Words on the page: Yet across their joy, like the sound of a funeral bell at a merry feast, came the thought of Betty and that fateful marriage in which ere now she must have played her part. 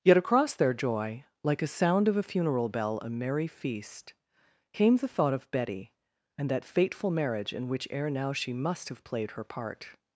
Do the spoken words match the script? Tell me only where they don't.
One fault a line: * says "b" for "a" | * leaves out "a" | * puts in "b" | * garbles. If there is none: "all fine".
* says "a" for "the"
* leaves out "at"